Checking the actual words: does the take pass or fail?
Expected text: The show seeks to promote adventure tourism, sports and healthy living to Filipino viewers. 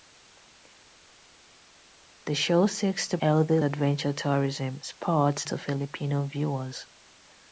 fail